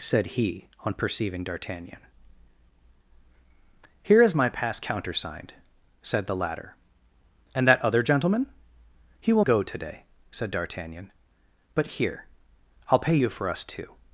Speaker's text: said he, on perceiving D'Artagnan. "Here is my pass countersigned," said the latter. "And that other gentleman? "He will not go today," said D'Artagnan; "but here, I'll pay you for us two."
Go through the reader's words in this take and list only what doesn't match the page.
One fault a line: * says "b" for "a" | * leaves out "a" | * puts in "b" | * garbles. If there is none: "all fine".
* leaves out "not"